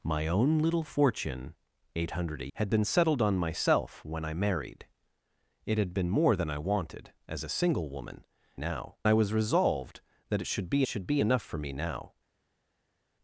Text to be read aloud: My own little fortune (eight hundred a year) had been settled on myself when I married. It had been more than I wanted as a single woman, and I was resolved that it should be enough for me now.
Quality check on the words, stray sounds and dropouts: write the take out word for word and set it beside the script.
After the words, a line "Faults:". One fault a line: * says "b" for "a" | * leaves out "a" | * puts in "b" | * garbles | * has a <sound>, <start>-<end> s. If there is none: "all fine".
My own little fortune (eight hundred a) had been settled on myself when I married. It had been more than I wanted as a single woman, now I was resolved that it should be should be enough for me now.
Faults:
* leaves out "year"
* says "now" for "and"
* puts in "should be"